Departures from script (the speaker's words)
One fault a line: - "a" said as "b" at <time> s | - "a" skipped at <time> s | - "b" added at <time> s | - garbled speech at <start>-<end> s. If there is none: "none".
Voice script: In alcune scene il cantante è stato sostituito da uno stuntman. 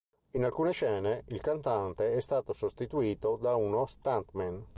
none